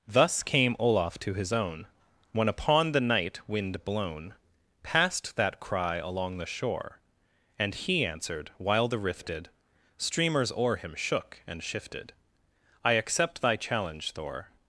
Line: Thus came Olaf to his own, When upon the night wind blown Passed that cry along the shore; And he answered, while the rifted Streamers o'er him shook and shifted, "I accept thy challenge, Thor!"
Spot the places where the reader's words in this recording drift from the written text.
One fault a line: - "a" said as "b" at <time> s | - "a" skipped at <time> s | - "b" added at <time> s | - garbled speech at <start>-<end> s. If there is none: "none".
none